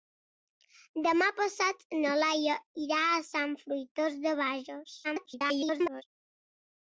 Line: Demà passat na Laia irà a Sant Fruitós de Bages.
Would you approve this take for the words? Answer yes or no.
no